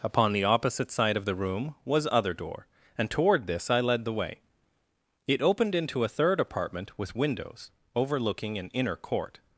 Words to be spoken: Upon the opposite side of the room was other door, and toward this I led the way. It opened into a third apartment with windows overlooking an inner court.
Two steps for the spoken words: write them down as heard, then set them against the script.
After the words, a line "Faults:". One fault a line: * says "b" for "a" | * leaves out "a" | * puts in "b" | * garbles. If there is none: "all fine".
Upon the opposite side of the room was other door, and toward this I led the way. It opened into a third apartment with windows overlooking an inner court.
Faults:
all fine